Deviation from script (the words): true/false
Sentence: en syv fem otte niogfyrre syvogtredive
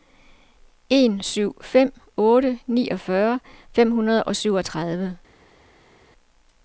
true